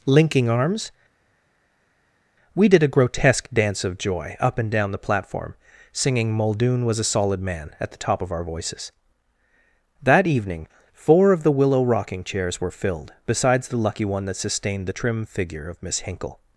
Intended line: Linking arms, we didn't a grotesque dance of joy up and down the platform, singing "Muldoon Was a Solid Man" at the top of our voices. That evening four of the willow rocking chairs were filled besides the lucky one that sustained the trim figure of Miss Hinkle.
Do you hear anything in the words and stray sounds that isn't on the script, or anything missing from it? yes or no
yes